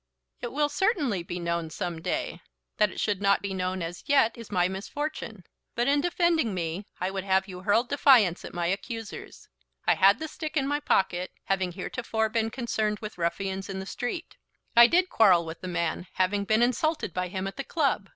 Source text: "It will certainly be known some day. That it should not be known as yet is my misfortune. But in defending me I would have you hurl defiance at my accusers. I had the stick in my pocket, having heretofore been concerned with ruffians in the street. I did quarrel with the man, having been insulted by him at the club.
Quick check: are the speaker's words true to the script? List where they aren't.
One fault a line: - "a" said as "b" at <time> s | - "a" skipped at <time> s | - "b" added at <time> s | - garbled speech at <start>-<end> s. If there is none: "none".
none